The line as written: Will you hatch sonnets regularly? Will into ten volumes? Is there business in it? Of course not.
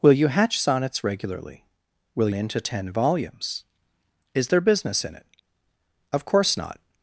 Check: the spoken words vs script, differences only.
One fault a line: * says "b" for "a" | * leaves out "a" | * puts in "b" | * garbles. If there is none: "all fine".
all fine